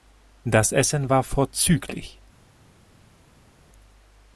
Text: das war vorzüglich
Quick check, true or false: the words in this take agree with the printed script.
false